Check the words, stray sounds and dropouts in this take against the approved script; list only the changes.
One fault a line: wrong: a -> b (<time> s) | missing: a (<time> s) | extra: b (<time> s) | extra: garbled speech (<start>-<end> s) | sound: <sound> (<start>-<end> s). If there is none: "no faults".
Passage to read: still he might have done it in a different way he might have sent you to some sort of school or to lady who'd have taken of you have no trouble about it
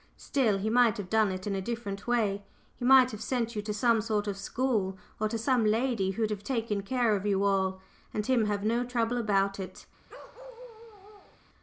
extra: some (5.4 s)
extra: care (6.8 s)
extra: all and him (7.4 s)
sound: bark (10.1-11.4 s)